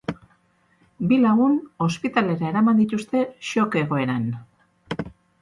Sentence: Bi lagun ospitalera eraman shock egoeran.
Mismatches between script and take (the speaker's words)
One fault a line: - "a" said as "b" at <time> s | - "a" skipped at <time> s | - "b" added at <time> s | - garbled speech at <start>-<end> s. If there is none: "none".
- "dituzte" added at 2.8 s